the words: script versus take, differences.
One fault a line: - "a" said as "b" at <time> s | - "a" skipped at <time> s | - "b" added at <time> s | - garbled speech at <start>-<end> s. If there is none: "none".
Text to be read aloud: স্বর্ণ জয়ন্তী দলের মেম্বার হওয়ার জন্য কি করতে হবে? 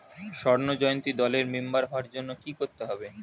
none